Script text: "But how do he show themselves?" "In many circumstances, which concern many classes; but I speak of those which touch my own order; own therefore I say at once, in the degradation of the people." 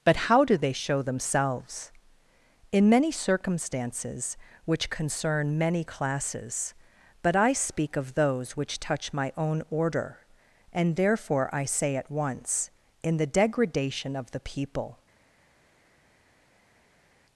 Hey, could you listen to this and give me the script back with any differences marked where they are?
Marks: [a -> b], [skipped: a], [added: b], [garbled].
"But how do [he -> they] show themselves?" "In many circumstances, which concern many classes; but I speak of those which touch my own order; [own -> and] therefore I say at once, in the degradation of the people."